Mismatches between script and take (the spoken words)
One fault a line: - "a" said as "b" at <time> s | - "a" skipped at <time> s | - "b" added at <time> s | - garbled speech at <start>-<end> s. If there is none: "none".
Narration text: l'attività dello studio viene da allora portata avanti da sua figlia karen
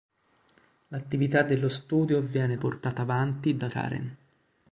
- "da allora" skipped at 2.5 s
- "sua figlia" skipped at 3.7 s